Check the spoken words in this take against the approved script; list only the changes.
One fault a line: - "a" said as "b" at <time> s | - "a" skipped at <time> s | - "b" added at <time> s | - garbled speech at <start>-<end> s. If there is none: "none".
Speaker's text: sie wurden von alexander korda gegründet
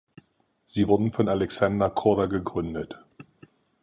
none